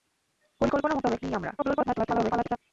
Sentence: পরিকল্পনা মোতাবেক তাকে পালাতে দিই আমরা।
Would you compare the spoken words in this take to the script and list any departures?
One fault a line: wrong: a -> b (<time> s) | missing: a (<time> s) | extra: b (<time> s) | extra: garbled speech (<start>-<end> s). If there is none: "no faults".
missing: তাকে পালাতে (1.2 s)
extra: garbled speech (1.6-2.6 s)